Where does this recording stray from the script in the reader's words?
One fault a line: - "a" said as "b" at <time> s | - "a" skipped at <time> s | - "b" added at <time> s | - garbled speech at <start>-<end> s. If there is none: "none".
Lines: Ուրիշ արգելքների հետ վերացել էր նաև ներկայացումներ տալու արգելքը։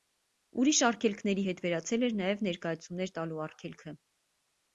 none